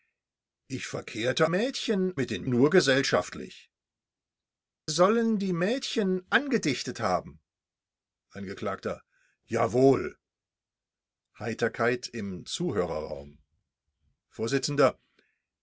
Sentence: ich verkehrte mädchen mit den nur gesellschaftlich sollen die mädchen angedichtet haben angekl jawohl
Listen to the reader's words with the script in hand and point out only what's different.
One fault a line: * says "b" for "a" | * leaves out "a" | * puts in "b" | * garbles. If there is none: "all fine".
all fine